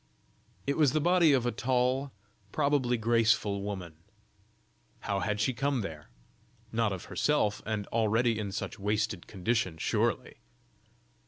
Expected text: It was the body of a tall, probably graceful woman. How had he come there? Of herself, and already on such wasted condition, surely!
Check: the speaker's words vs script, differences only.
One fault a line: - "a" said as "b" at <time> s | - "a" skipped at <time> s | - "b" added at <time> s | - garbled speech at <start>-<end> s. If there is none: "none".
- "he" said as "she" at 5.4 s
- "Not" added at 6.7 s
- "on" said as "in" at 8.4 s